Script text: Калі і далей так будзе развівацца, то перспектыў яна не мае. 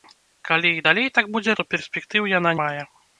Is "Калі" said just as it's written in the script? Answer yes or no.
yes